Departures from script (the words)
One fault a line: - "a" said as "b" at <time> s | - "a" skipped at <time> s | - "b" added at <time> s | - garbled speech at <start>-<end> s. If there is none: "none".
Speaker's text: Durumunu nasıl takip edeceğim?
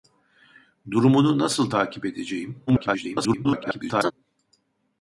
- garbled speech at 2.7-4.1 s